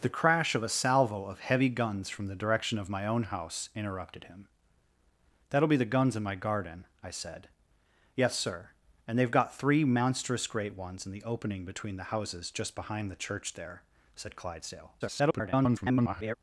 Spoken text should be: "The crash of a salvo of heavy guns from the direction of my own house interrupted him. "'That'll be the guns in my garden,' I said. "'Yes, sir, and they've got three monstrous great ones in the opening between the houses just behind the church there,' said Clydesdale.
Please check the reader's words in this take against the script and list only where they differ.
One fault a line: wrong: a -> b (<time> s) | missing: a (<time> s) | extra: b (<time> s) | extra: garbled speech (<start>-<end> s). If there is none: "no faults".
extra: garbled speech (15.0-16.3 s)